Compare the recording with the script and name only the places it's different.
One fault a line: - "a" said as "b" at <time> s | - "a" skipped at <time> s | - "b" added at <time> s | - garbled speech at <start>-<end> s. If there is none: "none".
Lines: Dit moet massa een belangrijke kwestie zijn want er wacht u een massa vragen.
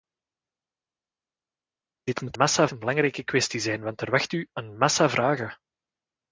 none